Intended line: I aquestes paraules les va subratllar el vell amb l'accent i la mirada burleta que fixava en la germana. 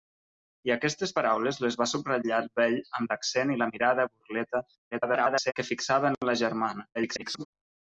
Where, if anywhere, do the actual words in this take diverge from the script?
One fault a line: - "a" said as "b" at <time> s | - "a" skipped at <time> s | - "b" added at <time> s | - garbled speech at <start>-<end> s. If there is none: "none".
- garbled speech at 4.9-5.5 s
- garbled speech at 6.9-7.5 s